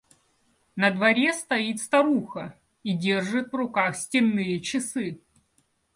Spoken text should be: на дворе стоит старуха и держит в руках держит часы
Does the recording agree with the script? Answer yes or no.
no